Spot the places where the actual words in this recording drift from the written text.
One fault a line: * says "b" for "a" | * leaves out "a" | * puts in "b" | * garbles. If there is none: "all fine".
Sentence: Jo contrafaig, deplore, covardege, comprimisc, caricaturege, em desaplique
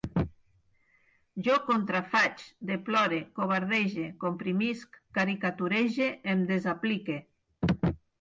all fine